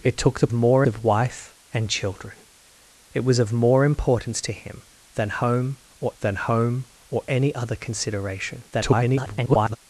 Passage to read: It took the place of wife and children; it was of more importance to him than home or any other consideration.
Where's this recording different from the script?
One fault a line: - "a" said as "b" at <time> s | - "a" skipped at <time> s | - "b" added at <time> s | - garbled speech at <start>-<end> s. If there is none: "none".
- "place" said as "more" at 0.5 s
- "than home or" added at 6.2 s
- garbled speech at 8.7-9.8 s